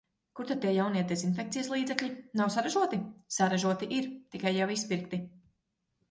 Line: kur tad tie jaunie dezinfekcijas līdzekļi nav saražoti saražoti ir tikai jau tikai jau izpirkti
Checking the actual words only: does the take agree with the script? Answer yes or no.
no